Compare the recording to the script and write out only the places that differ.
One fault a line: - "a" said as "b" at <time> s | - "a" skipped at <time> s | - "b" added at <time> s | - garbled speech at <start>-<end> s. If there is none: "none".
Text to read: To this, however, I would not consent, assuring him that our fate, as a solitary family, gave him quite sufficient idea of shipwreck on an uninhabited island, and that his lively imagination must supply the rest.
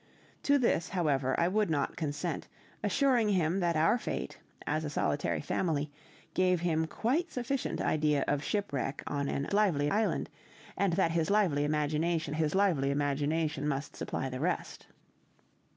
- "uninhabited" said as "lively" at 9.5 s
- "his lively imagination" added at 12.4 s